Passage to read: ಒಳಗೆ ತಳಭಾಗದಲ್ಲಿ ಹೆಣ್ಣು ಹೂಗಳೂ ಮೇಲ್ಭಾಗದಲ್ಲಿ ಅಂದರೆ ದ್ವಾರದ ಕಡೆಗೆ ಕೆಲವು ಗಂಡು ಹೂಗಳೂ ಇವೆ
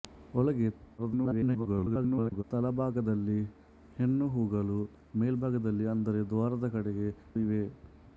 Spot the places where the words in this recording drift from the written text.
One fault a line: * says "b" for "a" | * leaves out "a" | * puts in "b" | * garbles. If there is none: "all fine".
* garbles
* leaves out "ಕೆಲವು ಗಂಡು ಹೂಗಳೂ"